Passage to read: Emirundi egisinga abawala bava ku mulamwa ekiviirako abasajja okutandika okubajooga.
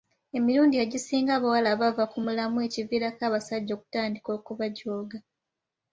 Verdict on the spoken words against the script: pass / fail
pass